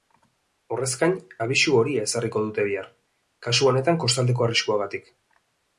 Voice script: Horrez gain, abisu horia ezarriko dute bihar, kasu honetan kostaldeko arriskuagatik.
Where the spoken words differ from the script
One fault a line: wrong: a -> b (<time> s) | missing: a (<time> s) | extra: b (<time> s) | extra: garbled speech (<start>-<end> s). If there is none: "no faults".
no faults